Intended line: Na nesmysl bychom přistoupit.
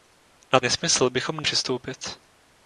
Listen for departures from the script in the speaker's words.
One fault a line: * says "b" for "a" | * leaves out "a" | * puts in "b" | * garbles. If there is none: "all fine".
all fine